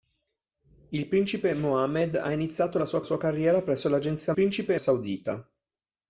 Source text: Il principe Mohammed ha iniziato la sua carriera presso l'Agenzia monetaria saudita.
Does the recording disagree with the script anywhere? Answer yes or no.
yes